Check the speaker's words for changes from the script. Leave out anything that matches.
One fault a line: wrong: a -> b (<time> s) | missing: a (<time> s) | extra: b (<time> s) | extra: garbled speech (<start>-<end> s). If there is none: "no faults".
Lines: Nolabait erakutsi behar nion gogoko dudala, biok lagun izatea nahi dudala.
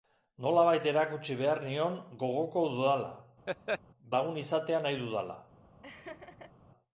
missing: biok (3.1 s)